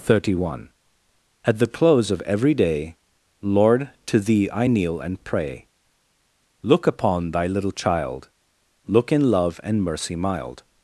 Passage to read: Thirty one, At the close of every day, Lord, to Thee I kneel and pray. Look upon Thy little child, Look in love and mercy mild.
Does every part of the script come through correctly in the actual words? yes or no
yes